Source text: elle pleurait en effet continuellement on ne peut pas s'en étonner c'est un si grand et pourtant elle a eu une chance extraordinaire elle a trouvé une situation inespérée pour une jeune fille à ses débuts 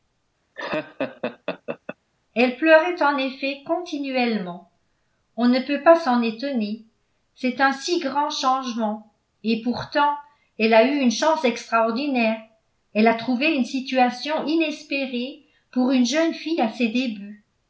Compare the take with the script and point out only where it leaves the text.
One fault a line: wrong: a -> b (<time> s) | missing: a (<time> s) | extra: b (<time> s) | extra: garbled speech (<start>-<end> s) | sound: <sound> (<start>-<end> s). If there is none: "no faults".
sound: laugh (0.5-2.0 s)
extra: changement (8.3 s)